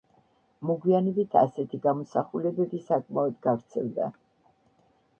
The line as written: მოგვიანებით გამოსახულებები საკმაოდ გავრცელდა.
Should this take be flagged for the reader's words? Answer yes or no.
yes